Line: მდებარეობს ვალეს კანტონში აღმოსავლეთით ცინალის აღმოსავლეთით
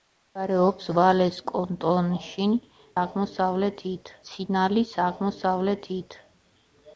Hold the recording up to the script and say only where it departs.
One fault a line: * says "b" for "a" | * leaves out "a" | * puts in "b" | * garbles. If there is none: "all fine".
all fine